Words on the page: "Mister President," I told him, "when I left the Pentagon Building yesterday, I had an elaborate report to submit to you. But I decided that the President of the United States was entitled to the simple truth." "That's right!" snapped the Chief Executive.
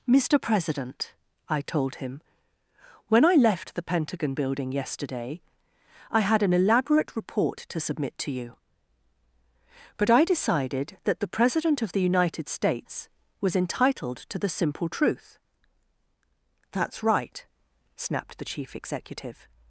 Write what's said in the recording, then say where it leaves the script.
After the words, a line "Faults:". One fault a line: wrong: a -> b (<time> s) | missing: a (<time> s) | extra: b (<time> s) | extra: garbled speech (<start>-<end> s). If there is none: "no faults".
"Mister President," I told him, "when I left the Pentagon Building yesterday, I had an elaborate report to submit to you. But I decided that the President of the United States was entitled to the simple truth." "That's right!" snapped the Chief Executive.
Faults:
no faults